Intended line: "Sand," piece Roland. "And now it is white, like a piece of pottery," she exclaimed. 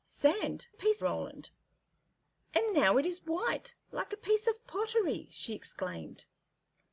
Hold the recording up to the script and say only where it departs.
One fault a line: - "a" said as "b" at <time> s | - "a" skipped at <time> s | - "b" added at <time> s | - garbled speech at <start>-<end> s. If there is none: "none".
none